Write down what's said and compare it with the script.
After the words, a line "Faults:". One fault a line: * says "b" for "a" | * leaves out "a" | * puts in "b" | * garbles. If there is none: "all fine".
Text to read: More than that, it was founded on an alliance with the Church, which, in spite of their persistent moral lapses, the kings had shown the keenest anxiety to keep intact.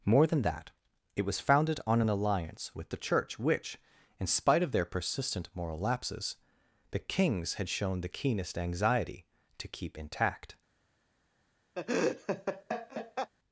More than that, it was founded on an alliance with the Church, which, in spite of their persistent moral lapses, the kings had shown the keenest anxiety to keep intact.
Faults:
all fine